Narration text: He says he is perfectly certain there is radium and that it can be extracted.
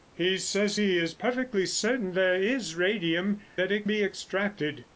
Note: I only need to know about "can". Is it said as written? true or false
false